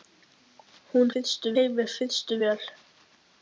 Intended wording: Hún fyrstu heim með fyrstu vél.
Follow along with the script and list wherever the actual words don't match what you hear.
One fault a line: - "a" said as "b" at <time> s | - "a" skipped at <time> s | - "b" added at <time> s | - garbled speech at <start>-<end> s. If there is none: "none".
none